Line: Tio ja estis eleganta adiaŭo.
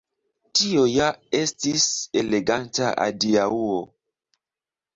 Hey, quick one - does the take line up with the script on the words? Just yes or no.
yes